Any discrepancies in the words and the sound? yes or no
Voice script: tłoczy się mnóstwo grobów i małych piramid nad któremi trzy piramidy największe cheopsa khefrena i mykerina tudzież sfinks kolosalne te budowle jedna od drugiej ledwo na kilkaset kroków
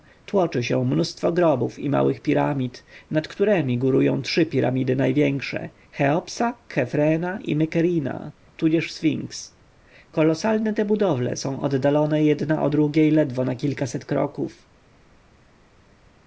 yes